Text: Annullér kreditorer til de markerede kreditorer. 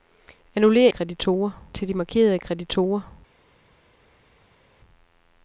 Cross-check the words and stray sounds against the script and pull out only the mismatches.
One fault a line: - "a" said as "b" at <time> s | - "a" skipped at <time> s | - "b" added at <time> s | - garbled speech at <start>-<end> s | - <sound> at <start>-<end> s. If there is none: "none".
none